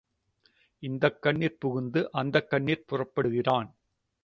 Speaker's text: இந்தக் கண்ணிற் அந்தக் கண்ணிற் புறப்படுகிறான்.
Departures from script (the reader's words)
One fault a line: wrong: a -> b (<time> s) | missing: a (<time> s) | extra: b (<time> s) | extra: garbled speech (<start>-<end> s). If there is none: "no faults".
extra: புகுந்து (1.6 s)